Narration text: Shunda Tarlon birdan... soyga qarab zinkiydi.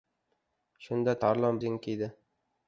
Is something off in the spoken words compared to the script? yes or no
yes